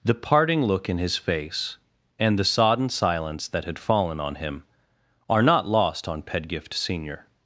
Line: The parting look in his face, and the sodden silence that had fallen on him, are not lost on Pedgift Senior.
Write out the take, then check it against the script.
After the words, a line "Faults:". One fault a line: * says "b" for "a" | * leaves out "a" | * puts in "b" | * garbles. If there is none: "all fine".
The parting look in his face, and the sodden silence that had fallen on him, are not lost on Pedgift Senior.
Faults:
all fine